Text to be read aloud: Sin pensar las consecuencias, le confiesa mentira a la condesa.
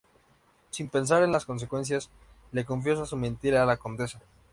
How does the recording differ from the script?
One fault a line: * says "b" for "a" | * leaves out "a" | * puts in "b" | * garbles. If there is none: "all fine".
* puts in "en"
* puts in "su"